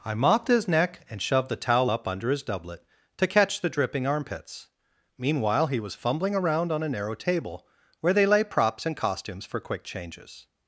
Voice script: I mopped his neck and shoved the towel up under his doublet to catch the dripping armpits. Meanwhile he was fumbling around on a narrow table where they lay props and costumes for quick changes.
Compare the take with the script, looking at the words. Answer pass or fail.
pass